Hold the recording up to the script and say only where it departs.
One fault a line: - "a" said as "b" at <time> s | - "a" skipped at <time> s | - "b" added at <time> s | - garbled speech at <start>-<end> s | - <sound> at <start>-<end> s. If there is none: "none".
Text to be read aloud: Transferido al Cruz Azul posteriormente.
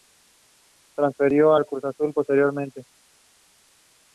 none